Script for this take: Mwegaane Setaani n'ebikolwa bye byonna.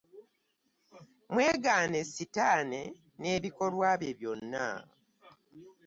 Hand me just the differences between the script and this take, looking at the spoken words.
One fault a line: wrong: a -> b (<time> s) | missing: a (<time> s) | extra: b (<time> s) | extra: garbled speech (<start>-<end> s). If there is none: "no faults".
no faults